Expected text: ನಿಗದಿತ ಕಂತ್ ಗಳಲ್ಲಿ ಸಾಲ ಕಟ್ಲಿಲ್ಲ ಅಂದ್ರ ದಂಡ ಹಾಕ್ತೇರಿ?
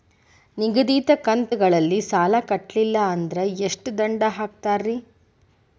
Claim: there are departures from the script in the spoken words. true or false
true